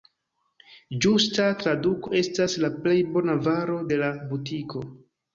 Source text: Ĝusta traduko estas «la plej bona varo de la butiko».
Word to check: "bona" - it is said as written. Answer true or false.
true